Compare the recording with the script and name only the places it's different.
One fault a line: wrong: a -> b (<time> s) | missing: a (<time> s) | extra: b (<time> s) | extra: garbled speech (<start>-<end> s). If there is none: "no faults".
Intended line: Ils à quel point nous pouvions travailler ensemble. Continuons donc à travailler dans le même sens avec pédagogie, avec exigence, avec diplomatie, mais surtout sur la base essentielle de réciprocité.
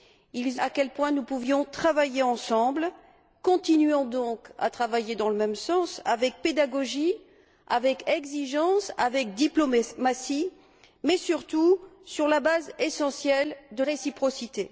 no faults